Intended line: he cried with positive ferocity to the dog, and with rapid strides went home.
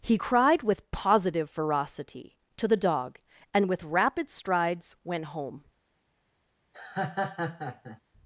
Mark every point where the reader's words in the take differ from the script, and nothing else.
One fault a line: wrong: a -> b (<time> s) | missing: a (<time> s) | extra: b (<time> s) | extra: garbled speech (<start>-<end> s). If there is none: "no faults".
no faults